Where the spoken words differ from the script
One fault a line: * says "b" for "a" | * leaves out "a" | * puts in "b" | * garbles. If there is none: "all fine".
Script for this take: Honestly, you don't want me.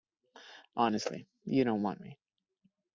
all fine